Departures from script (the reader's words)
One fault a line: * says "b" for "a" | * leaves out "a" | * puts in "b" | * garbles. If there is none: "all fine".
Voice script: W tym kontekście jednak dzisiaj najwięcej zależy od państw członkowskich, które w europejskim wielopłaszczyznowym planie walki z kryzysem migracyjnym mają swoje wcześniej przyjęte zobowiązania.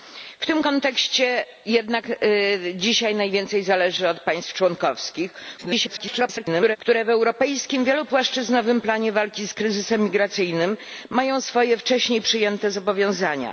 * garbles